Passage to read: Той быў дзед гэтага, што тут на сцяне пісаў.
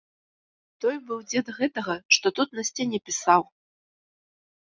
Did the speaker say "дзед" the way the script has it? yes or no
yes